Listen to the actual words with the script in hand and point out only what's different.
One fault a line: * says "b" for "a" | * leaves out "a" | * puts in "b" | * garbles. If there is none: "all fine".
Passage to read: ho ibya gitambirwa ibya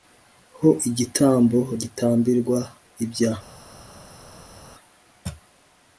* says "igitambo" for "ibya"